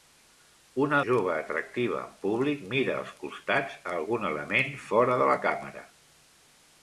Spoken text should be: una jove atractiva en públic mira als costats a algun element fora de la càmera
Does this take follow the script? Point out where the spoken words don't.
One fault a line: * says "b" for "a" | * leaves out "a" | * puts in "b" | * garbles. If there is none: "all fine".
all fine